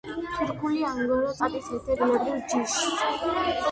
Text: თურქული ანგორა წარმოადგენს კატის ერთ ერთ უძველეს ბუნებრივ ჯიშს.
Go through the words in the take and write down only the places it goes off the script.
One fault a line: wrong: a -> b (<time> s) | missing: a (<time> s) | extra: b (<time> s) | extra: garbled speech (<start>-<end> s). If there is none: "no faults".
missing: წარმოადგენს (1.4 s)
missing: ერთ უძველეს (1.9 s)